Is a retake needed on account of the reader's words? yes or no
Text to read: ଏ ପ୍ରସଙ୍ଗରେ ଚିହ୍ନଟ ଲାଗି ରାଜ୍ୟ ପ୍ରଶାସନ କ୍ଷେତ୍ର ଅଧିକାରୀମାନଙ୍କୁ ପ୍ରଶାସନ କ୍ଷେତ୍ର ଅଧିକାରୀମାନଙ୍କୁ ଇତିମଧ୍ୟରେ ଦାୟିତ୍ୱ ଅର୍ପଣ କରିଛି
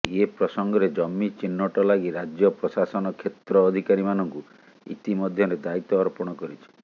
yes